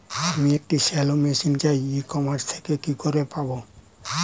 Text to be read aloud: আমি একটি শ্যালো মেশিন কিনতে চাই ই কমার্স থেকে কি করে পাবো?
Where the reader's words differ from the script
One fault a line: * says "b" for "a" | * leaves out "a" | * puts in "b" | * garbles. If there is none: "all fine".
* leaves out "কিনতে"